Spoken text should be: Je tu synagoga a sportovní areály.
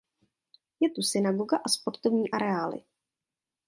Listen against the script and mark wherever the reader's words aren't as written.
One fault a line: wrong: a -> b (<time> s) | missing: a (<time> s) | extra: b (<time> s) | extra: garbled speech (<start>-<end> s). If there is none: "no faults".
no faults